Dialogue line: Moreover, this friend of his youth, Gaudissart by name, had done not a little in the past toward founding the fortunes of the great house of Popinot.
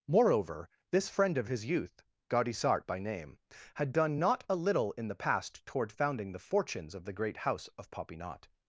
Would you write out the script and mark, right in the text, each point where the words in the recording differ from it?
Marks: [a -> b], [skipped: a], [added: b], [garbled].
Moreover, this friend of his youth, Gaudissart by name, had done not a little in the past toward founding the fortunes of the great house of Popinot.